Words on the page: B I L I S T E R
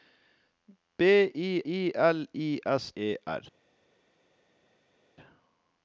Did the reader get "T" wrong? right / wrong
wrong